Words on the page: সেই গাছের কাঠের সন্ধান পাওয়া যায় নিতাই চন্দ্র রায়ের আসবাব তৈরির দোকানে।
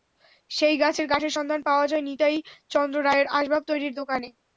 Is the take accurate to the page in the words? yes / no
yes